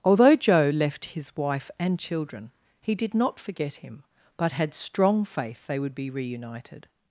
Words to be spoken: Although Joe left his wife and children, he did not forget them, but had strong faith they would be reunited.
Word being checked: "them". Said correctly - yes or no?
no